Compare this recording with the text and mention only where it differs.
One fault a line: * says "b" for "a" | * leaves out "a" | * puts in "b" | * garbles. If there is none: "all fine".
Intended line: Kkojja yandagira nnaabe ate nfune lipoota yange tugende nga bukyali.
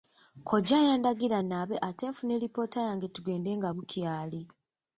all fine